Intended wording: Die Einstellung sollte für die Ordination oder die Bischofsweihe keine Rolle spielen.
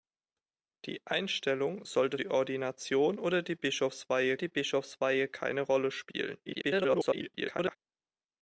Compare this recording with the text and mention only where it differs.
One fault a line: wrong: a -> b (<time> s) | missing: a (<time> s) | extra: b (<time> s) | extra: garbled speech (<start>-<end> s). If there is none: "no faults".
missing: für (2.2 s)
extra: die Bischofsweihe (4.4 s)
extra: garbled speech (6.5-7.8 s)